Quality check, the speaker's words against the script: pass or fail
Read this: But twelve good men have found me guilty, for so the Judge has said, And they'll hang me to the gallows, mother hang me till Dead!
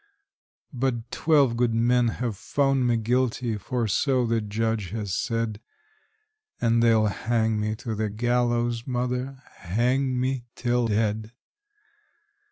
pass